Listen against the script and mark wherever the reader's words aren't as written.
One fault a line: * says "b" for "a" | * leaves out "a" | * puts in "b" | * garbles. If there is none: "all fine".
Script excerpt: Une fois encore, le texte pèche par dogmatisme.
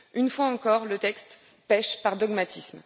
all fine